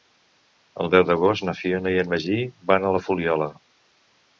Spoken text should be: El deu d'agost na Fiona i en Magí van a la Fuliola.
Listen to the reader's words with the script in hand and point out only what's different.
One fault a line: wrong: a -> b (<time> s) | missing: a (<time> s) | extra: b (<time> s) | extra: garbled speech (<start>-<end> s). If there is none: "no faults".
no faults